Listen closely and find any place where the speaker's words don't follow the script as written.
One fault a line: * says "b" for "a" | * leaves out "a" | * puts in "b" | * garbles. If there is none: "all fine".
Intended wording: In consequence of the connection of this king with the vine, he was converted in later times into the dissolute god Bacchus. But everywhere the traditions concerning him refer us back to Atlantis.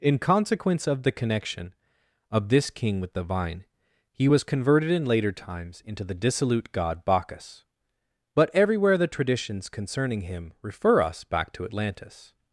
all fine